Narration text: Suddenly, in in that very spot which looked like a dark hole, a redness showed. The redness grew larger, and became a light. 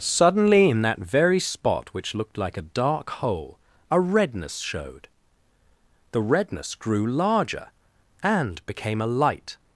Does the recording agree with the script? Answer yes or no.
no